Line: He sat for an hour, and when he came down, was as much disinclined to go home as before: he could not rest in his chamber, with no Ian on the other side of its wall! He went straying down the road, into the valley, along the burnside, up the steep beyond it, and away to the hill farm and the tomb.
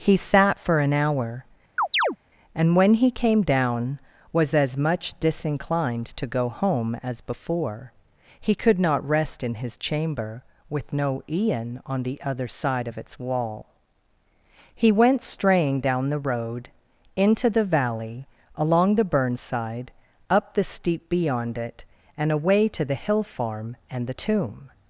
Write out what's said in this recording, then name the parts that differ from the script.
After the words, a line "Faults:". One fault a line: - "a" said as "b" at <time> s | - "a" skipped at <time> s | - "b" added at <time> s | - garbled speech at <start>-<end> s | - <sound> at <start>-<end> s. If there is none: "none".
He sat for an hour, and when he came down, was as much disinclined to go home as before: he could not rest in his chamber, with no Ian on the other side of its wall! He went straying down the road, into the valley, along the burnside, up the steep beyond it, and away to the hill farm and the tomb.
Faults:
- chirp at 1.8-2.2 s